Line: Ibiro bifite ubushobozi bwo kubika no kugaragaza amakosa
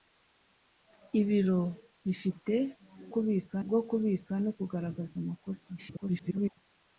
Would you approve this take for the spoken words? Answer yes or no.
no